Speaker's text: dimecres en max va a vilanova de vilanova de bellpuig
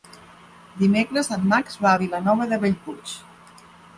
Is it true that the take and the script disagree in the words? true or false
true